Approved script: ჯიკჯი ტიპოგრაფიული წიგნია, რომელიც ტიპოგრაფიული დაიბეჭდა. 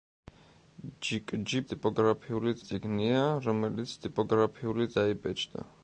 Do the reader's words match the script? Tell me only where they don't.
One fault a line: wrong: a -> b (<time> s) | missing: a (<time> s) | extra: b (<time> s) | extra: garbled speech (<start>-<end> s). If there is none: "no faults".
no faults